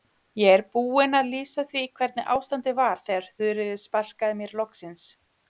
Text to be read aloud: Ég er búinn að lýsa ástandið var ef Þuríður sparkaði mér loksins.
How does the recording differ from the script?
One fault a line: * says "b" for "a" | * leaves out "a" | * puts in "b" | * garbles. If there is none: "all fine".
* puts in "því hvernig"
* says "þegar" for "ef"